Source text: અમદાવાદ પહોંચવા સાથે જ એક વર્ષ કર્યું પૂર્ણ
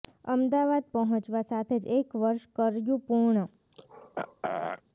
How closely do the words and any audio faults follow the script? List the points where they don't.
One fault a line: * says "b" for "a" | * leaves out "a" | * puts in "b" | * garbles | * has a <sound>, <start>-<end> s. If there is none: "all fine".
* has a throat clearing, 3.7-4.8 s